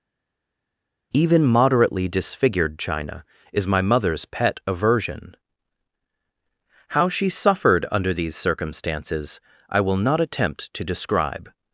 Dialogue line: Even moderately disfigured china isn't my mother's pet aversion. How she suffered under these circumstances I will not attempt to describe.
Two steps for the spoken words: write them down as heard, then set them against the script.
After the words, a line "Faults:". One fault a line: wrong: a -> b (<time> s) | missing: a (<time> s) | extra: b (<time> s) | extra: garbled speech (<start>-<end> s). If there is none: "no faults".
Even moderately disfigured china is my mother's pet aversion. How she suffered under these circumstances I will not attempt to describe.
Faults:
wrong: isn't -> is (3.5 s)